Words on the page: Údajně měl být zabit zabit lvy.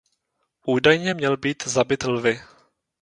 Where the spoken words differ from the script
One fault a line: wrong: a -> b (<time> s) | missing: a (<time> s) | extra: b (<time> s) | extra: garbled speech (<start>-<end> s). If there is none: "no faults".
missing: zabit (2.0 s)